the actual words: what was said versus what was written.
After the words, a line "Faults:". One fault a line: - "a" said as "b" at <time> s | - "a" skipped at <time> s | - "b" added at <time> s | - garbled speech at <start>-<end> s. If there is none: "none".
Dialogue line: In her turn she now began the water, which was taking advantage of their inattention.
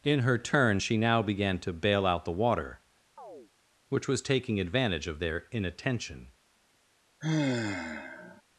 In her turn she now began to bail out the water, which was taking advantage of their inattention.
Faults:
- "to bail out" added at 1.6 s